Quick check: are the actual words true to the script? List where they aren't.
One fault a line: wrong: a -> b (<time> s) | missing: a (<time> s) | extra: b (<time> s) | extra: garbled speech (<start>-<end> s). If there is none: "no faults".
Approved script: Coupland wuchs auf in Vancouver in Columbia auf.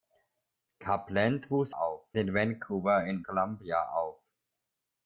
no faults